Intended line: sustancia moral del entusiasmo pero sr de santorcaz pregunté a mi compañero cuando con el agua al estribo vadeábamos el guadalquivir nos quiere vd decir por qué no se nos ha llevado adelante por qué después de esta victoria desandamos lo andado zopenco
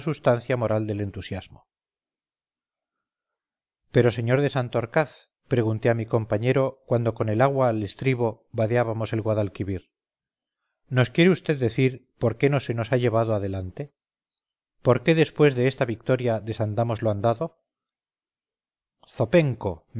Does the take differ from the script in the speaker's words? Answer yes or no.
no